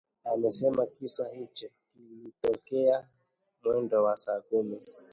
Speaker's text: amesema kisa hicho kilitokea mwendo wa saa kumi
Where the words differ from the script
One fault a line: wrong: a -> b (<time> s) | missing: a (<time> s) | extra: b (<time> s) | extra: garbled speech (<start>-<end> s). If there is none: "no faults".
no faults